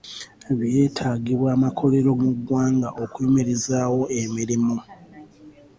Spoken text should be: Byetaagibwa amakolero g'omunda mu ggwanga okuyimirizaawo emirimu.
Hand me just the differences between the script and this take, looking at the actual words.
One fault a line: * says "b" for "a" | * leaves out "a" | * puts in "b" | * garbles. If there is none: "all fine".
* leaves out "g'omunda"